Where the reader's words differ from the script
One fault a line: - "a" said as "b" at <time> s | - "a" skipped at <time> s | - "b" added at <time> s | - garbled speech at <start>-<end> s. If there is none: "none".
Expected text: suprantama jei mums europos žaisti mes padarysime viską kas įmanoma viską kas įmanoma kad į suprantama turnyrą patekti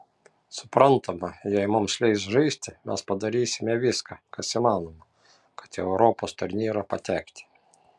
- "europos" said as "leis" at 2.0 s
- "viską kas įmanoma" skipped at 5.1 s
- "suprantama" said as "europos" at 5.9 s